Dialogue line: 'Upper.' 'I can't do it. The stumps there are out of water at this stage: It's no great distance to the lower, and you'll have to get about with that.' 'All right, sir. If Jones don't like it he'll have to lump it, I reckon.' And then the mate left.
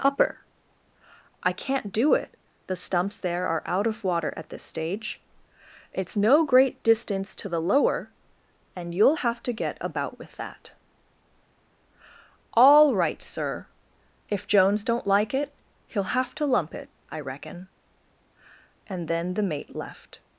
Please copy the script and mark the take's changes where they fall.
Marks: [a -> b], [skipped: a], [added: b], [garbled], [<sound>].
'Upper.' 'I can't do it. The stumps there are out of water at this stage: It's no great distance to the lower, and you'll have to get about with that.' 'All right, sir. If Jones don't like it he'll have to lump it, I reckon.' And then the mate left.